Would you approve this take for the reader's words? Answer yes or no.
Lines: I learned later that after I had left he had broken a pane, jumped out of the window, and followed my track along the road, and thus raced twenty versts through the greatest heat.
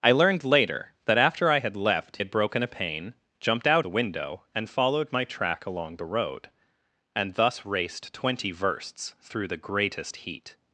no